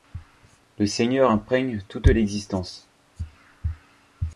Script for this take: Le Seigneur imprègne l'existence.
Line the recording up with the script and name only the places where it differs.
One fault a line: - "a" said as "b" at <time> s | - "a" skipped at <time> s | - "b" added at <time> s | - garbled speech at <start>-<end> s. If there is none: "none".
- "toute" added at 1.9 s